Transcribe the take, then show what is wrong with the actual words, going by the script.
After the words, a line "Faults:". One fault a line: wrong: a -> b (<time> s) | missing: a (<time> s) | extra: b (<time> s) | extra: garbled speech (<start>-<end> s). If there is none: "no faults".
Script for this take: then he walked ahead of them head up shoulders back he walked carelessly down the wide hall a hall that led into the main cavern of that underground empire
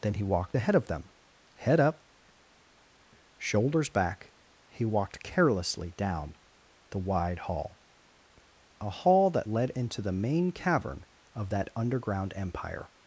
then he walked ahead of them head up shoulders back he walked carelessly down the wide hall a hall that led into the main cavern of that underground empire
Faults:
no faults